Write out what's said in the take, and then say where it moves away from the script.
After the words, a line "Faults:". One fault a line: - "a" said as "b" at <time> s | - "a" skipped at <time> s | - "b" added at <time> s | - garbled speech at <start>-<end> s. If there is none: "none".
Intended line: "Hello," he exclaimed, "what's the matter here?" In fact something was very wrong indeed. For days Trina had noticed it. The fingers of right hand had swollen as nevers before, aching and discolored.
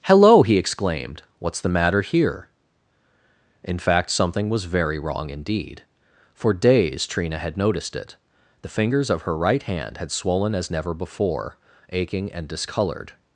"Hello," he exclaimed, "what's the matter here?" In fact something was very wrong indeed. For days Trina had noticed it. The fingers of her right hand had swollen as never before, aching and discolored.
Faults:
- "her" added at 9.2 s
- "nevers" said as "never" at 10.7 s